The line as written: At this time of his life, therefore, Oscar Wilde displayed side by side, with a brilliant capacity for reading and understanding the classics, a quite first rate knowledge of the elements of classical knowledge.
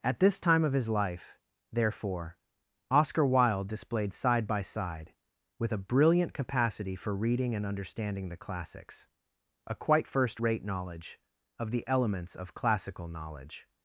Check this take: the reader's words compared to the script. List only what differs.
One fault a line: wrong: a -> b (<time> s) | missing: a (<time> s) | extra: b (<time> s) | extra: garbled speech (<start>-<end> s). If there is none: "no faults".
no faults